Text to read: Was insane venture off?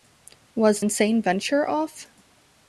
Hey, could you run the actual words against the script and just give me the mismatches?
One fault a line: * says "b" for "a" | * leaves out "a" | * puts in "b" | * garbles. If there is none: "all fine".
all fine